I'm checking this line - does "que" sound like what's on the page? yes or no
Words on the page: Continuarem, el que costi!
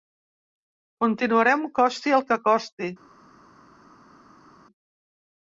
yes